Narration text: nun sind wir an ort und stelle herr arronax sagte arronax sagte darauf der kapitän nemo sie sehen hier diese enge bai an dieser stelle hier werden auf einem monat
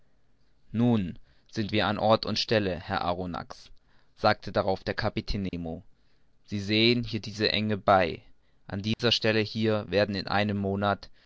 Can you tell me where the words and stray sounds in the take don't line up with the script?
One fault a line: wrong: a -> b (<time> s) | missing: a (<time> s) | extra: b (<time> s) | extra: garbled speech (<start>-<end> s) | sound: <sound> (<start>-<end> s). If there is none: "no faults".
missing: arronax sagte (4.5 s)
sound: dropout (5.5-5.5 s)
sound: dropout (8.9-9.0 s)
wrong: auf -> in (10.1 s)